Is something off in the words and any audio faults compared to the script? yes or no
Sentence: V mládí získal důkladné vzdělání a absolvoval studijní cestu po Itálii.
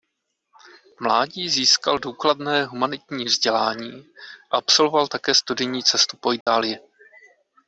yes